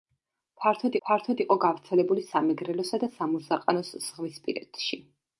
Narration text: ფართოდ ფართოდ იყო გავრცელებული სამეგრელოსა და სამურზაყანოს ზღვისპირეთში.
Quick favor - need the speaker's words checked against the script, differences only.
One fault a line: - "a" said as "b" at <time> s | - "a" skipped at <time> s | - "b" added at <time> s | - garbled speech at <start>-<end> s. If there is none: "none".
none